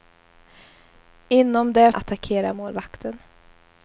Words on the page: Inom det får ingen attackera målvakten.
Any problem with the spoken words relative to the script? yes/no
yes